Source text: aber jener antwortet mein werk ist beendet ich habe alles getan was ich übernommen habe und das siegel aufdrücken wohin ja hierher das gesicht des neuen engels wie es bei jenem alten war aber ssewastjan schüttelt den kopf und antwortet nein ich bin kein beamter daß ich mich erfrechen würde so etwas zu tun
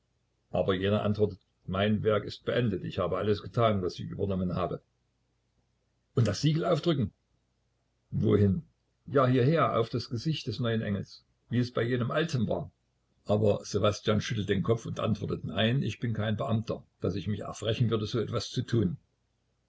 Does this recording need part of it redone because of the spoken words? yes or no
yes